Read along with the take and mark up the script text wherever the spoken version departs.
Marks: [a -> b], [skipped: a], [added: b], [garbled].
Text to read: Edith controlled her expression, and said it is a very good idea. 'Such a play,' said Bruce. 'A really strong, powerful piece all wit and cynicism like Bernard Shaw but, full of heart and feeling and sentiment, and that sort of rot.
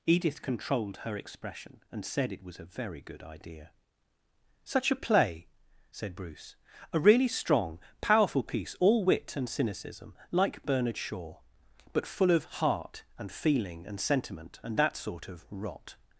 Edith controlled her expression, and said it [is -> was] a very good idea. 'Such a play,' said Bruce. 'A really strong, powerful piece all wit and cynicism like Bernard Shaw but, full of heart and feeling and sentiment, and that sort of rot.